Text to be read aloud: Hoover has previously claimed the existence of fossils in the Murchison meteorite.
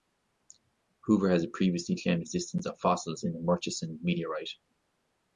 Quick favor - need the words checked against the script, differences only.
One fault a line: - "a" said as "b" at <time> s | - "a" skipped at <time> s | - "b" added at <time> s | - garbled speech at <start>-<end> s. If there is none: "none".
- "the" skipped at 2.2 s